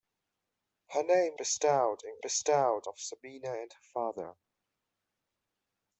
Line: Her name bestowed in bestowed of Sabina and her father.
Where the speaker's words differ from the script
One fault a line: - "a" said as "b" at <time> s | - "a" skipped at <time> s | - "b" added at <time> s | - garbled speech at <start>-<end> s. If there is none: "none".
none